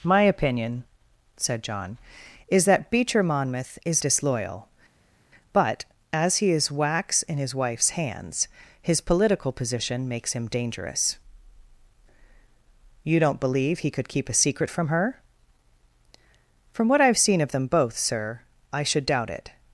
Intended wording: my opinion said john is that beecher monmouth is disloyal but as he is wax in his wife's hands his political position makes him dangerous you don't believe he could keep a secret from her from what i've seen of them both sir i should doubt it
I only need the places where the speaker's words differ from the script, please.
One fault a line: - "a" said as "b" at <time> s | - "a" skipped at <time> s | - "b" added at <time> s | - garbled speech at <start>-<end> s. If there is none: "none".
none